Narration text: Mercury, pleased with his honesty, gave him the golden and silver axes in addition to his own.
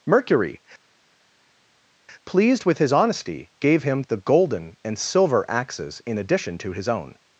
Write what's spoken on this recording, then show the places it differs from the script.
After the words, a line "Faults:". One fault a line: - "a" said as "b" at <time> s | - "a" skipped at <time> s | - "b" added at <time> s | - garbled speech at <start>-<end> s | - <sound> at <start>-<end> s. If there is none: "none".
Mercury, pleased with his honesty, gave him the golden and silver axes in addition to his own.
Faults:
none